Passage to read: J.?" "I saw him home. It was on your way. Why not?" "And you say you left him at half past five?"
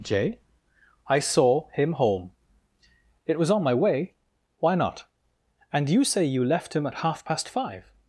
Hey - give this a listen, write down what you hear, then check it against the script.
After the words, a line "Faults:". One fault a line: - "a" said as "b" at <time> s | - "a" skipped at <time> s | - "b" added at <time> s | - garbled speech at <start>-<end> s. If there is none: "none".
J.?" "I saw him home. It was on my way. Why not?" "And you say you left him at half past five?"
Faults:
- "your" said as "my" at 3.6 s